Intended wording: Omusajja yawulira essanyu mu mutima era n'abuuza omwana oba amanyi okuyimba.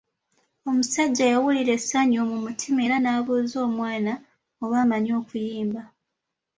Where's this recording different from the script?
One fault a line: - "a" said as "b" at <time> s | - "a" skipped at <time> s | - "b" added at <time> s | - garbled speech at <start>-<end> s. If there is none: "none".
none